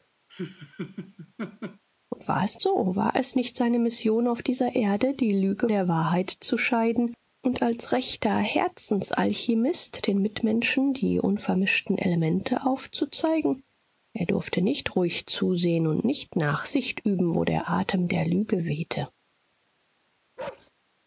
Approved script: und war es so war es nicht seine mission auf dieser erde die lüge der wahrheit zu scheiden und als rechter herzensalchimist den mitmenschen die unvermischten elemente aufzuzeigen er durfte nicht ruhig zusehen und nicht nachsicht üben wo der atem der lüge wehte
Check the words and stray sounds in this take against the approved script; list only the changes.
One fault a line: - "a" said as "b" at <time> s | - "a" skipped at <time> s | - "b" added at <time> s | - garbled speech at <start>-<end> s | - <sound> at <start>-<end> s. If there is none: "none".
- laugh at 0.3-1.8 s
- bark at 20.4-20.7 s